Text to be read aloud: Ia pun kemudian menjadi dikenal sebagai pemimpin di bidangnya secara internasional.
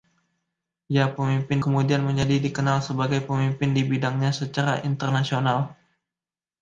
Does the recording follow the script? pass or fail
fail